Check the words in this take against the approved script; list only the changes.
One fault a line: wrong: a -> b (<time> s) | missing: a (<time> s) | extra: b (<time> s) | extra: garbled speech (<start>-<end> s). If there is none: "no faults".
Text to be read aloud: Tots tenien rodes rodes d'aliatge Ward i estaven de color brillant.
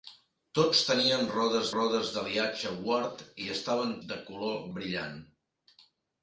no faults